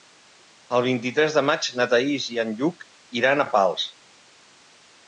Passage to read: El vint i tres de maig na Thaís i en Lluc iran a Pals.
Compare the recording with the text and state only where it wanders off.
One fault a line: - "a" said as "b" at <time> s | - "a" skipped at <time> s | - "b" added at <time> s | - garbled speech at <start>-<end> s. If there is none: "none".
none